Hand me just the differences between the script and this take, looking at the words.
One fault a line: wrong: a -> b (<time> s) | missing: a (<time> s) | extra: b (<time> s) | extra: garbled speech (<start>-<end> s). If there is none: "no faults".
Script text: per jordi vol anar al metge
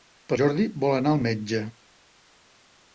no faults